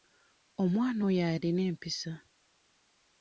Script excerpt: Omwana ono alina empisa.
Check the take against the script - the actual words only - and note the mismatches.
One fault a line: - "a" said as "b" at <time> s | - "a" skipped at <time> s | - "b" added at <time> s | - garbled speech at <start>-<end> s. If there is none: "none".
- "ono" said as "oyo" at 1.1 s